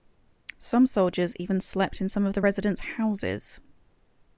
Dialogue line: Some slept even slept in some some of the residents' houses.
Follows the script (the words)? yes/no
no